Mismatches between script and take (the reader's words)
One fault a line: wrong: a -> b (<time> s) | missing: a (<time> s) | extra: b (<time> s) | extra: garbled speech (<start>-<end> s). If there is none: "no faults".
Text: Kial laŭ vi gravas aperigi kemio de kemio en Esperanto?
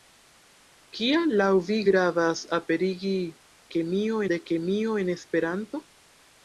no faults